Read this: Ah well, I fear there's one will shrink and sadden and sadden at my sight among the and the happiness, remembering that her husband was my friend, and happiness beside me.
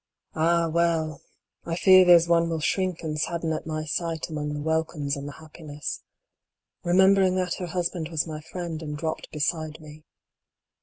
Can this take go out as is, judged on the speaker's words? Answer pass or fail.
fail